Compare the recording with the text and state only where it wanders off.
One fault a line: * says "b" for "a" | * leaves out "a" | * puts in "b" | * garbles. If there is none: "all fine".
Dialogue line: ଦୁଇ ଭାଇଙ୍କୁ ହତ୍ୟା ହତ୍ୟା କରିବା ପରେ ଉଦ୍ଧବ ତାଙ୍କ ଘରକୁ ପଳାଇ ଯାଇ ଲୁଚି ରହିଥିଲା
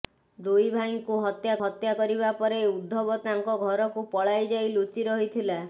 all fine